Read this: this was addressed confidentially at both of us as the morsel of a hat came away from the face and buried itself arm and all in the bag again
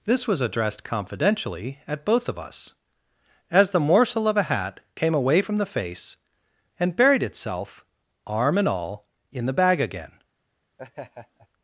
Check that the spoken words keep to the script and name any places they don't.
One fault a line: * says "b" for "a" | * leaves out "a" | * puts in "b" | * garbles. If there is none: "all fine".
all fine